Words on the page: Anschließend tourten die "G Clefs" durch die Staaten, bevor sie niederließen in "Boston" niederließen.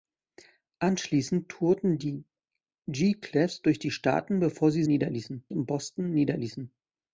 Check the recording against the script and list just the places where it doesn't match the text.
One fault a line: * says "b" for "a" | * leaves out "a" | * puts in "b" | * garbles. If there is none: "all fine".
all fine